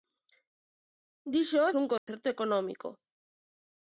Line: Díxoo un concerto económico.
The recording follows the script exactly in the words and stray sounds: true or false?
false